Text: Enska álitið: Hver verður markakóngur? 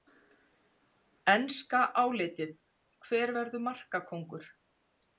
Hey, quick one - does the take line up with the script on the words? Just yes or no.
yes